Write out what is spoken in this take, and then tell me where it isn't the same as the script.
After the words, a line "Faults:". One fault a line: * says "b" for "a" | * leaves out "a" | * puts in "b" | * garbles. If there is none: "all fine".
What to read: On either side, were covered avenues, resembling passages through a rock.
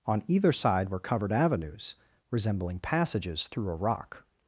On either side, were covered avenues, resembling passages through a rock.
Faults:
all fine